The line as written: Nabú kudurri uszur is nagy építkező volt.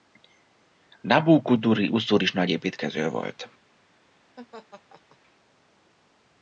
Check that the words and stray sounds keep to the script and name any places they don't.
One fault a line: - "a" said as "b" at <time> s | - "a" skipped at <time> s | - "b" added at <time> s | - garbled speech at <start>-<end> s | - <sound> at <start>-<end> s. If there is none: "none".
- laugh at 4.4-5.2 s